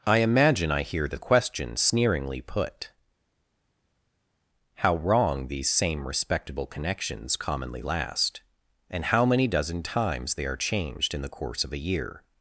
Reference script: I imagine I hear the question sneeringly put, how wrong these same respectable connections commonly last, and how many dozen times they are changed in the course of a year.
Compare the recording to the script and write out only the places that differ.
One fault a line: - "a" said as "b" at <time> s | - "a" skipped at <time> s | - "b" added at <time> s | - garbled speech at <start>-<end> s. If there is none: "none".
none